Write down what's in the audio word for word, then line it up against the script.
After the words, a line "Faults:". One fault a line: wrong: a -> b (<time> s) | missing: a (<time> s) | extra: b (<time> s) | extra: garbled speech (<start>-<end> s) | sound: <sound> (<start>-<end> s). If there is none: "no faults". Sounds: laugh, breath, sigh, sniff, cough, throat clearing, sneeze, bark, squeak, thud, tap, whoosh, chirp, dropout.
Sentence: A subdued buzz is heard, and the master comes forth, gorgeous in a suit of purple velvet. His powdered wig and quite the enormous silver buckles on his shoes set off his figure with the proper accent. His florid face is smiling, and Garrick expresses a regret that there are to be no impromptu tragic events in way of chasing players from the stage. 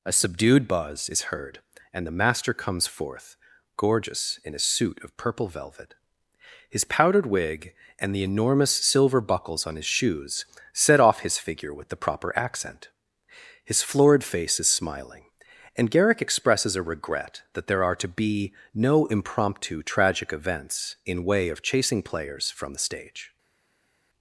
A subdued buzz is heard, and the master comes forth, gorgeous in a suit of purple velvet. His powdered wig and the enormous silver buckles on his shoes set off his figure with the proper accent. His florid face is smiling, and Garrick expresses a regret that there are to be no impromptu tragic events in way of chasing players from the stage.
Faults:
missing: quite (8.2 s)